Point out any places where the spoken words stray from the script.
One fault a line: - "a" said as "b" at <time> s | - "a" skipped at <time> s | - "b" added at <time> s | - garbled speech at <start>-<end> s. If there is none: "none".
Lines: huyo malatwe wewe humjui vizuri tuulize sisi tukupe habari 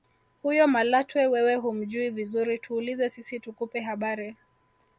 none